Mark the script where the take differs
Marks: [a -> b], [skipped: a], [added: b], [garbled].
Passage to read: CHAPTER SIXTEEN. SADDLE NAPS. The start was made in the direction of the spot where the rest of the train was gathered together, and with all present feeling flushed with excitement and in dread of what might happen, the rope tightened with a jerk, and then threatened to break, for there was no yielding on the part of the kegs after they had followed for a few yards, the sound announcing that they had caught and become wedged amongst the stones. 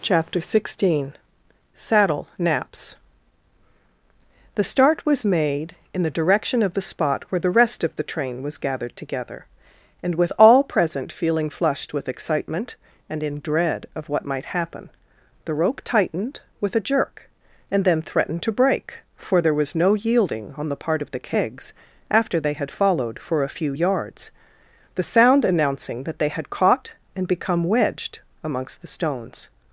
CHAPTER SIXTEEN. SADDLE NAPS. The start was made in the direction of the spot where the rest of the train was gathered together, and with all present feeling flushed with excitement and in dread of what might happen, the rope tightened with a jerk, and then threatened to break, for there was no yielding on the part of the kegs after they had followed for a few yards, the sound announcing that they had caught and become wedged amongst the stones.